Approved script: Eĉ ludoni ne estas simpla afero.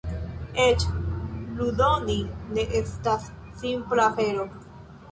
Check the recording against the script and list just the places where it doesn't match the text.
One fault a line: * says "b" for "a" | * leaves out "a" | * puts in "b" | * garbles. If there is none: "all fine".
all fine